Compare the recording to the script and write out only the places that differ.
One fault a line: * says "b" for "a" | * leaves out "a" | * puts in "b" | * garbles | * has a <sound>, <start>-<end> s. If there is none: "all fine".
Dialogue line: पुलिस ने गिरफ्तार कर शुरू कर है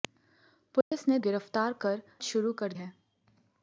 * has a dropout, 0.8-0.9 s